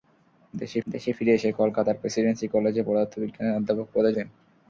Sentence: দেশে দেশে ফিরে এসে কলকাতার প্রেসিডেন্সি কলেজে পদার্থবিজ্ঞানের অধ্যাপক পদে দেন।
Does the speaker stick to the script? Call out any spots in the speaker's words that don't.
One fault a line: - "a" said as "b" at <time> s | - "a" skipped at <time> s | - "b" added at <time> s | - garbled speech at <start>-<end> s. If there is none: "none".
none